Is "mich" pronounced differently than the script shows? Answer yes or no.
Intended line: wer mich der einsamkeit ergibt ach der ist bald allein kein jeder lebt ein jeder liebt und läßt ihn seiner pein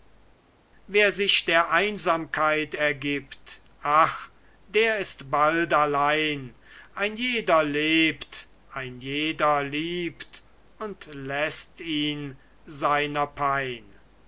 yes